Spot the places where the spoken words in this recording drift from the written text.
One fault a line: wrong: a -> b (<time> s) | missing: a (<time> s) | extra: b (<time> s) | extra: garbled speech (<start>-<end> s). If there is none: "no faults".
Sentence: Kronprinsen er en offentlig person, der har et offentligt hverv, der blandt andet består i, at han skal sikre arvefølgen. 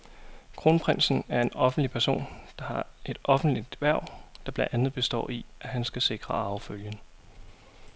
no faults